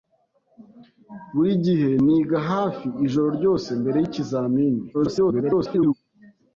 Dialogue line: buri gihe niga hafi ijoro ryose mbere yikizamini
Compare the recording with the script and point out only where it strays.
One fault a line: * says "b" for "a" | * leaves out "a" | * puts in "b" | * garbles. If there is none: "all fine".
* garbles